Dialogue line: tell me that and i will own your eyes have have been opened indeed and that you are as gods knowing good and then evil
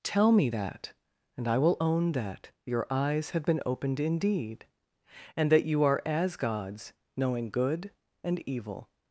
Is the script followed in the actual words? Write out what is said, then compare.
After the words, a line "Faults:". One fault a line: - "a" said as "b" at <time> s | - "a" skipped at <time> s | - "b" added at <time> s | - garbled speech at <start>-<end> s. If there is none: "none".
tell me that and i will own that your eyes have been opened indeed and that you are as gods knowing good and evil
Faults:
- "that" added at 2.1 s
- "have" skipped at 3.4 s
- "then" skipped at 8.4 s